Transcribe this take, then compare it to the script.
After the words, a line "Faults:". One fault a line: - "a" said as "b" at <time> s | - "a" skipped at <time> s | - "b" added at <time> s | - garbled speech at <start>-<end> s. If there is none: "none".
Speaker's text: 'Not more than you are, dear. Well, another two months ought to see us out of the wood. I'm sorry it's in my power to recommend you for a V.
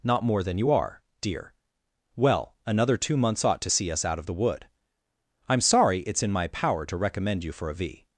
'Not more than you are, dear. Well, another two months ought to see us out of the wood. I'm sorry it's in my power to recommend you for a V.
Faults:
none